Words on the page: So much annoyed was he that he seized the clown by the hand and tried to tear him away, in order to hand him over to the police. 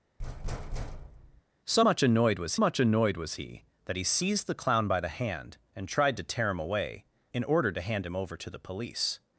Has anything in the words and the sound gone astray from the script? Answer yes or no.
yes